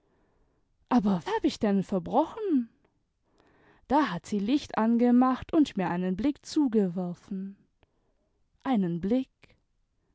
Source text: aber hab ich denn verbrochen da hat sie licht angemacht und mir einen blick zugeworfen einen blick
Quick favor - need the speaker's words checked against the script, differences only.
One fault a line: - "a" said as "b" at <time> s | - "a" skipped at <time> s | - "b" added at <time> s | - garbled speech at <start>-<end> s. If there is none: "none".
none